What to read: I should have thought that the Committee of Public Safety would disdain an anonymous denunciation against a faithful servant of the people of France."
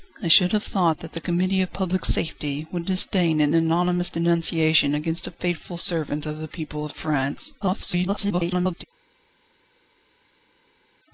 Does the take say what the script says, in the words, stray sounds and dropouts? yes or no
no